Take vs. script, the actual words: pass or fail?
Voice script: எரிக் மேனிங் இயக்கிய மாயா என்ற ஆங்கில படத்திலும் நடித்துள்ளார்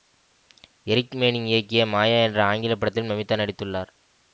fail